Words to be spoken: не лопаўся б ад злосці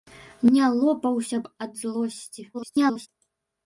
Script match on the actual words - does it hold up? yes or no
no